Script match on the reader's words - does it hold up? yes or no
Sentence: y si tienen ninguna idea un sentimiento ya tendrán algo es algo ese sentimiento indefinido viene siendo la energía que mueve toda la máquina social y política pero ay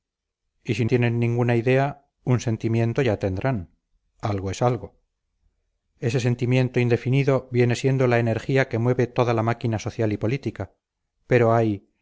yes